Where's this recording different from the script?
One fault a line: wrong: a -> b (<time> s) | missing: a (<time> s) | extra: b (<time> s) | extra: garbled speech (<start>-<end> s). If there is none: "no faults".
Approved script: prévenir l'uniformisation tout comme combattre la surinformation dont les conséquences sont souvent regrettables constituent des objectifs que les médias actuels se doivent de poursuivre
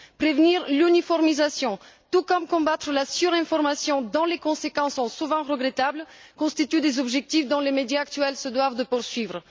no faults